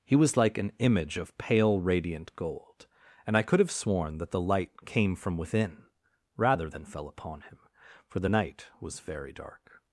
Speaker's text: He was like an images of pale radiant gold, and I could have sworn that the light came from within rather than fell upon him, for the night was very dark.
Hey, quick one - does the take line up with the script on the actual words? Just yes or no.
no